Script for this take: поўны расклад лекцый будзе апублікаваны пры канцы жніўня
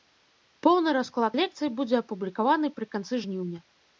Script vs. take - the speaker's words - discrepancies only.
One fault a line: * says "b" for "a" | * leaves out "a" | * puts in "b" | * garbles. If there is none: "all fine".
all fine